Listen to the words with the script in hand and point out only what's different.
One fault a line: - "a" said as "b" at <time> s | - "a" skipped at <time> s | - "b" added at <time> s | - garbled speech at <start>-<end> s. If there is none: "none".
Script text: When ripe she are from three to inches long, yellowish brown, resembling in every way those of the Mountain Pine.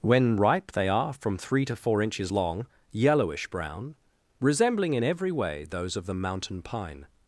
- "she" said as "they" at 0.7 s
- "four" added at 1.8 s